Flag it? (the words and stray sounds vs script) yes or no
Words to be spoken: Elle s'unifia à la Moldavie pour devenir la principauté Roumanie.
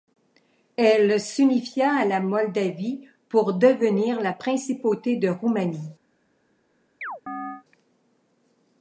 yes